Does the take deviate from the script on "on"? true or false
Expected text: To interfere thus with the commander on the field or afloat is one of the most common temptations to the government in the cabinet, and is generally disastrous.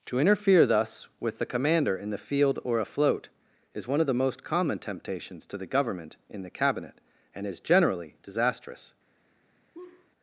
true